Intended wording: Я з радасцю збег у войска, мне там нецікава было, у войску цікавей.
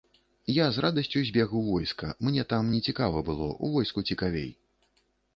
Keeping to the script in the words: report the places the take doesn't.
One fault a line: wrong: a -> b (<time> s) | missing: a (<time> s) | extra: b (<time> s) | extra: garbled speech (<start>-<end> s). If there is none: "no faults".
no faults